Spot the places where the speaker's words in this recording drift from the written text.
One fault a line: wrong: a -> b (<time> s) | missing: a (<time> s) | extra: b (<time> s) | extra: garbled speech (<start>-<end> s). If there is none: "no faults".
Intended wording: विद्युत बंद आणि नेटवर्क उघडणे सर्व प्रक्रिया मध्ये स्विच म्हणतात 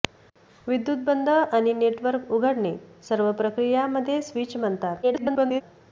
extra: garbled speech (5.0-5.6 s)